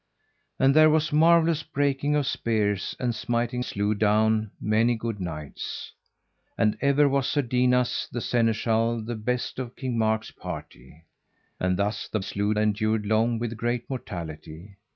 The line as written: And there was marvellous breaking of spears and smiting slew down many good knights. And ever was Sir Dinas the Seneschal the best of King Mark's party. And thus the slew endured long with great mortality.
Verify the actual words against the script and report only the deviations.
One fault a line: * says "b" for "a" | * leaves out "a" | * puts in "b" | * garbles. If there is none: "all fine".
all fine